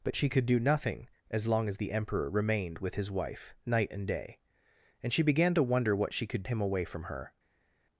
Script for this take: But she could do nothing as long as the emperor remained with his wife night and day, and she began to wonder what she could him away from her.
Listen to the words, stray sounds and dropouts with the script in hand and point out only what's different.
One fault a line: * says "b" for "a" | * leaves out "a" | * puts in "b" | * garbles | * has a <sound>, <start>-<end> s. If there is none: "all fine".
all fine